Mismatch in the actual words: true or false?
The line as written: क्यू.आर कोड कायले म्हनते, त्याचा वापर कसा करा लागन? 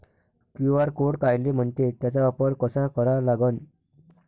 false